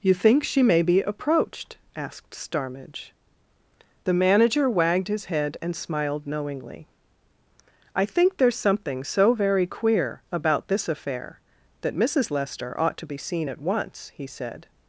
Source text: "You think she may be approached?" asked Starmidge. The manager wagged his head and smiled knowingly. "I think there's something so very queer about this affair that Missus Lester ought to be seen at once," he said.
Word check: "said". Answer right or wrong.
right